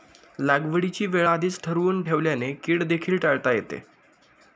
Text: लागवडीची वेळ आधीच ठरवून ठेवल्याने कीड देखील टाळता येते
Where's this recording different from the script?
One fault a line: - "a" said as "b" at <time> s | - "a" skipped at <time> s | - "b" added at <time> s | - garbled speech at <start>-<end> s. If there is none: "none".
none